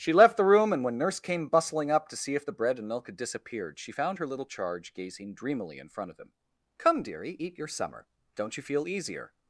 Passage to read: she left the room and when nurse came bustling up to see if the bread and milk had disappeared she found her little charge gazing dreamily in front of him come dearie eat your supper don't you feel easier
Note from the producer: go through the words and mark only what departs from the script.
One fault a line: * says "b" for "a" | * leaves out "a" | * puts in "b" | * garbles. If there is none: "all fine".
* says "summer" for "supper"